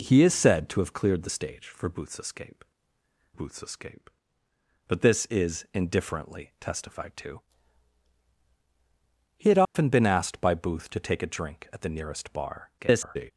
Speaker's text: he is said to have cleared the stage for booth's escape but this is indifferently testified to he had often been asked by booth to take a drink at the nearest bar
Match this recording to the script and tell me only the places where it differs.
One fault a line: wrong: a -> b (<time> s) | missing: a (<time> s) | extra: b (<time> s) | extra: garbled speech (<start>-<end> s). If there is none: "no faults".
extra: booth's escape (3.3 s)
extra: garbled speech (12.8-13.3 s)